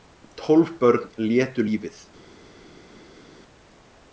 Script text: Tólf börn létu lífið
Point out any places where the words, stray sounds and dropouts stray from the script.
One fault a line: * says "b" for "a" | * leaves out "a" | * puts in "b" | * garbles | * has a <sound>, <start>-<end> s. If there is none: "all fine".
all fine